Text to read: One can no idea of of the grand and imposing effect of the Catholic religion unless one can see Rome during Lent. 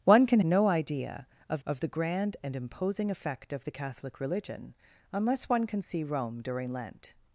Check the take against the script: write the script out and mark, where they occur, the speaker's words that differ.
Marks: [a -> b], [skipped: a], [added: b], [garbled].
One can no idea of of the grand and imposing effect of the Catholic religion unless one can see Rome during Lent.